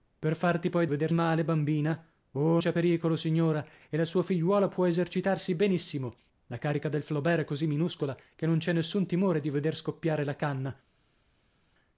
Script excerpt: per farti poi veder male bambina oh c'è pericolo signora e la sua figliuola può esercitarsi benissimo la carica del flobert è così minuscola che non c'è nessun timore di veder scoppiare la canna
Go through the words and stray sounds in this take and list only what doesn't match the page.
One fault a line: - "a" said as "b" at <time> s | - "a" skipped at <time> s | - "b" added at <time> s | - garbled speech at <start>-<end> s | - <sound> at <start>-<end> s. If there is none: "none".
none